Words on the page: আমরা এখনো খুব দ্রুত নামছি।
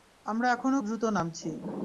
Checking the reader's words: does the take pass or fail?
fail